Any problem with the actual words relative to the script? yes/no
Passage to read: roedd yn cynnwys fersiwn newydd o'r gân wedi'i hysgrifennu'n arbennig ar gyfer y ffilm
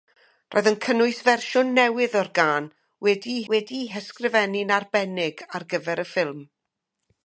yes